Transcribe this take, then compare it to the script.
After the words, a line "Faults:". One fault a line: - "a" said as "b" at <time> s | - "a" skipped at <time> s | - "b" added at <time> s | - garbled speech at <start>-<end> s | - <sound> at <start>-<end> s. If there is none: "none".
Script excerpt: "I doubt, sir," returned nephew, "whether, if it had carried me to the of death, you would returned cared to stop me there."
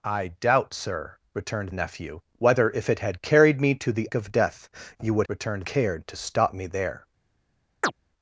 "I doubt, sir," returned nephew, "whether, if it had carried me to the of death, you would returned cared to stop me there."
Faults:
- chirp at 7.8-7.9 s